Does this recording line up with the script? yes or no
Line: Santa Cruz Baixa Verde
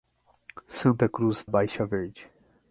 yes